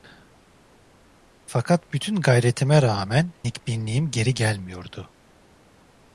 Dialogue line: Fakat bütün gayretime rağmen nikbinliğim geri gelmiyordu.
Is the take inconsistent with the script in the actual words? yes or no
no